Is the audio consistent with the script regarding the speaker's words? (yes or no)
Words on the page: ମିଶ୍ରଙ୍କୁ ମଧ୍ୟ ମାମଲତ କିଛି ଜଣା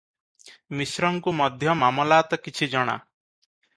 yes